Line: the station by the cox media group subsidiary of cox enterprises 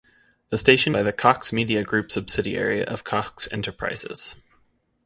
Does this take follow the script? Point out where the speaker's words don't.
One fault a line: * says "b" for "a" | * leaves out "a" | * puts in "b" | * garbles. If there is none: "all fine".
all fine